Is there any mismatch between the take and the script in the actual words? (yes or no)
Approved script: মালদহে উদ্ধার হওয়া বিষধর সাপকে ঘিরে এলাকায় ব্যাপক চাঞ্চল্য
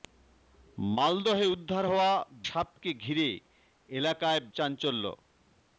yes